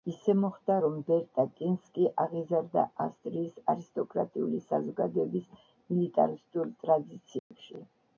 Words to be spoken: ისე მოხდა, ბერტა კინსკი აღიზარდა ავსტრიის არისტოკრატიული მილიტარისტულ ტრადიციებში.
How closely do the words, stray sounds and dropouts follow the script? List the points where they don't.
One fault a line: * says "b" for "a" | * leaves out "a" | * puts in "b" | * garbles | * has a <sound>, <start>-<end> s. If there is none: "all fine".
* puts in "რომ"
* puts in "საზოგადოების"
* has a dropout, 7.4-7.5 s